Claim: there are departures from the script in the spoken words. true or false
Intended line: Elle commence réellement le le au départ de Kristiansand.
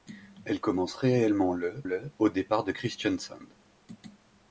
false